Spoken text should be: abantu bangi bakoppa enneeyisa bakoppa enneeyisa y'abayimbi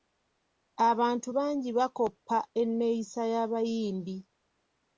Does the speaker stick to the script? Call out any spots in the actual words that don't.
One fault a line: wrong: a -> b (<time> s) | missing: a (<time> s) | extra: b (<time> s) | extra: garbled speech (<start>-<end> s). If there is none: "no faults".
missing: bakoppa enneeyisa (3.2 s)